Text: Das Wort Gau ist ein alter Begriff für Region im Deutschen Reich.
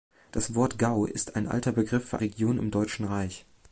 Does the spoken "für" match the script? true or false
true